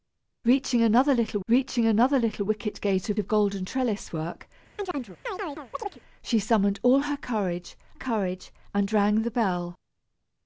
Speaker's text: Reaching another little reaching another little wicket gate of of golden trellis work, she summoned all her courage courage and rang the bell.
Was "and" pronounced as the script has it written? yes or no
yes